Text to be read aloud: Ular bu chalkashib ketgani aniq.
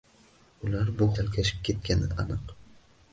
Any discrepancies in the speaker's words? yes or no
no